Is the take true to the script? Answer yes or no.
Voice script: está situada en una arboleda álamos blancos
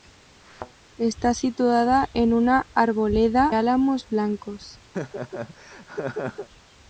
yes